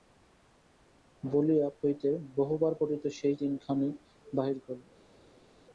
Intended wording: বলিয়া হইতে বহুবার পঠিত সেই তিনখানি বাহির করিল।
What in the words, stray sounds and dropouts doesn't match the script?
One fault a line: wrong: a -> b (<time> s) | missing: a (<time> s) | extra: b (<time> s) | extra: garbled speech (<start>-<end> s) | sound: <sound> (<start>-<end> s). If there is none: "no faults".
no faults